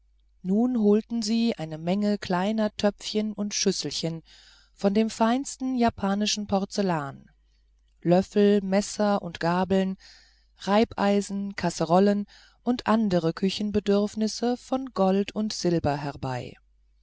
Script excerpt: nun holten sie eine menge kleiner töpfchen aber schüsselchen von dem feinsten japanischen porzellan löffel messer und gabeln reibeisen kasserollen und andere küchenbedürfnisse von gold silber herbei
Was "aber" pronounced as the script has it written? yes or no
no